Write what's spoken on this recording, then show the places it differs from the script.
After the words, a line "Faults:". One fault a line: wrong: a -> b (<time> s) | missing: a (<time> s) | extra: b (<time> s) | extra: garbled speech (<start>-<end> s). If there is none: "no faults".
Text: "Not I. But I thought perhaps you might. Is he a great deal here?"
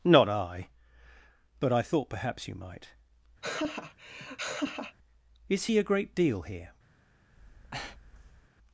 "Not I. But I thought perhaps you might. Is he a great deal here?"
Faults:
no faults